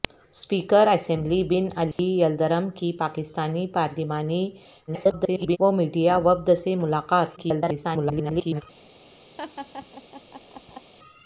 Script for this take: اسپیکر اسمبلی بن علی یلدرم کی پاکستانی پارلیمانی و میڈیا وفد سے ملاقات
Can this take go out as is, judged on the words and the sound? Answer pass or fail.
fail